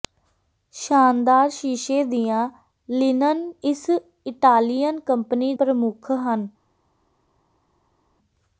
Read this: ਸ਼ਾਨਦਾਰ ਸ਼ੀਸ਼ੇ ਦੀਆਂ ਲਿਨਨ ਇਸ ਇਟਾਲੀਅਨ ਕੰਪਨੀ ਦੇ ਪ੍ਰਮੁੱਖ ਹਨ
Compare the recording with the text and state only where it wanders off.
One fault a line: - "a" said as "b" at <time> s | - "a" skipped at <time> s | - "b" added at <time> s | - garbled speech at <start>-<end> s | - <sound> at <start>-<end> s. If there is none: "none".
- "ਦੇ" skipped at 5.5 s